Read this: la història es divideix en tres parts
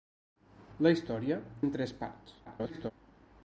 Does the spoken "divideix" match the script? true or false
false